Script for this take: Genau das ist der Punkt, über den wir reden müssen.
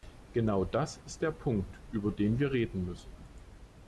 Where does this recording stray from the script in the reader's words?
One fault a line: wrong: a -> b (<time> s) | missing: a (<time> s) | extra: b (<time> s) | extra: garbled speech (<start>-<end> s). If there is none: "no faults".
no faults